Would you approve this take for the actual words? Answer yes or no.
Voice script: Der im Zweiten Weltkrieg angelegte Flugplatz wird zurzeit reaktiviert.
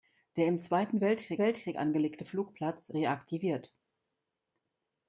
no